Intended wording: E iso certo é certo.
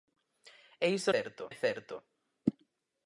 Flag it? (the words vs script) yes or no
no